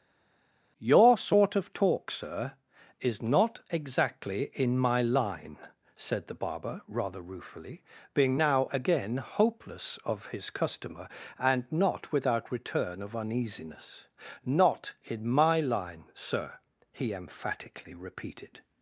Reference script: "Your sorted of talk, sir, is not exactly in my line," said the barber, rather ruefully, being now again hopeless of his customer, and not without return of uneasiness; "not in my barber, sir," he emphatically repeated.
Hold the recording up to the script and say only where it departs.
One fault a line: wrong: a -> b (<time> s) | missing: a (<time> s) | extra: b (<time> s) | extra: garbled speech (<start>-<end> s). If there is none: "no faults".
wrong: sorted -> sort (1.2 s)
wrong: barber -> line (15.6 s)